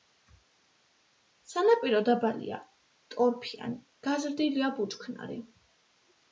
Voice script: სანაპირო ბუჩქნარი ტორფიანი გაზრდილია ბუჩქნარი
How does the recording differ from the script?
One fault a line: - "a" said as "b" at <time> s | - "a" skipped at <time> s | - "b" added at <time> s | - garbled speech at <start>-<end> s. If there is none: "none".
- "ბუჩქნარი" said as "დაბალია" at 2.0 s